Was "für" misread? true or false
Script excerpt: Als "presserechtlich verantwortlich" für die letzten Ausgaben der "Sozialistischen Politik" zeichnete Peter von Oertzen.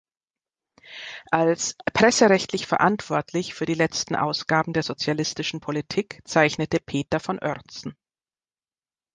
false